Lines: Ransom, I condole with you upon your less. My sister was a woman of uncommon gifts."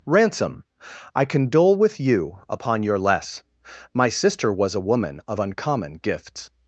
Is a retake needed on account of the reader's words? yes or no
no